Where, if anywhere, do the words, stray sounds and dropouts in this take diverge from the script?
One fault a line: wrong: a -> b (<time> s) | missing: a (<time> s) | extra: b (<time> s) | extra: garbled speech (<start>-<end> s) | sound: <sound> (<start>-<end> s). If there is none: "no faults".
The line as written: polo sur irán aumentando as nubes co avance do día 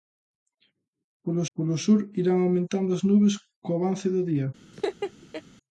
extra: polo (1.5 s)
sound: laugh (4.7-5.4 s)